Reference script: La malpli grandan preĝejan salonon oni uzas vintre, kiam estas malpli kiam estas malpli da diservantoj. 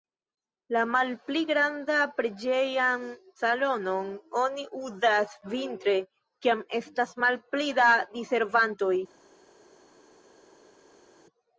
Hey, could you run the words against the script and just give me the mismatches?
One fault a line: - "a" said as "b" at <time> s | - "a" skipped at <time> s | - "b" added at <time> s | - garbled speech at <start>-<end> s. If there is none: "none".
- "kiam estas malpli" skipped at 7.7 s